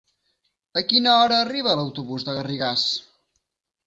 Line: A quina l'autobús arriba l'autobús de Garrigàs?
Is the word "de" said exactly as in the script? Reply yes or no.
yes